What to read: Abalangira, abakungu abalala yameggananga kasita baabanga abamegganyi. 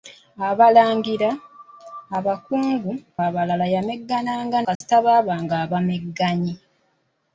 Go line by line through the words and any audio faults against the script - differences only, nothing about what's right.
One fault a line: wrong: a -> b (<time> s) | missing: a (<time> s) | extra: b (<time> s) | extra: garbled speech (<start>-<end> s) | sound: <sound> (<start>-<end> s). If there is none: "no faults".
sound: dropout (4.7-4.8 s)